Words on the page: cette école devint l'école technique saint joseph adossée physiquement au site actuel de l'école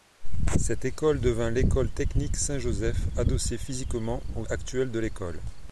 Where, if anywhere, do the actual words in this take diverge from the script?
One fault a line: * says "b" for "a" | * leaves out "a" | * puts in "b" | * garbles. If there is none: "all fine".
* leaves out "site"